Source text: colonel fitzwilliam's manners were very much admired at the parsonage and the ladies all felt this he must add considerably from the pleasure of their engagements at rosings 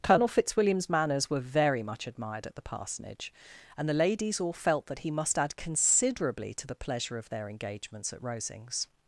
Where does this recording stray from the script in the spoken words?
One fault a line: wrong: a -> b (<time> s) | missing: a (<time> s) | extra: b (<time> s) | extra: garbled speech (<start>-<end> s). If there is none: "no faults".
wrong: this -> that (4.8 s)
wrong: from -> to (6.5 s)